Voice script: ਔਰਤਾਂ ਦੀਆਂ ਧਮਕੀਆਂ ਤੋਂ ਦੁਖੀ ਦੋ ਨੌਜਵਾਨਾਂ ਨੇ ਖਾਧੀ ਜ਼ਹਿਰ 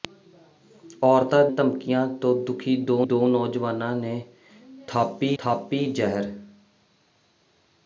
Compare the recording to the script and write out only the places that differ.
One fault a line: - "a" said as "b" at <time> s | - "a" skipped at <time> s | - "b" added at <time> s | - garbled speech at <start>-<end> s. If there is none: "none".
- "ਦੀਆਂ" skipped at 1.4 s
- "ਦੋ" added at 3.1 s
- "ਖਾਧੀ" added at 5.4 s